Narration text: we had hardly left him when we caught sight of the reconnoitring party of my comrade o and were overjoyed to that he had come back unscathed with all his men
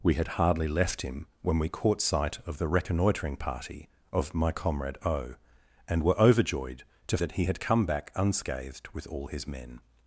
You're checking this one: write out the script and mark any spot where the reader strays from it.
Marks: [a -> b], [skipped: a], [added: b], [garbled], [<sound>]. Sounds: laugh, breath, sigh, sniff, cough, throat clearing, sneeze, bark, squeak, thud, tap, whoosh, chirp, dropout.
we had hardly left him when we caught sight of the reconnoitring party of my comrade o and were overjoyed to that he had come back unscathed with all his men